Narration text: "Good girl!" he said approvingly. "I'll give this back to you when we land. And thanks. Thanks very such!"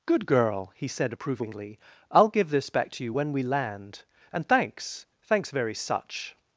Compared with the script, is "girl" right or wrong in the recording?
right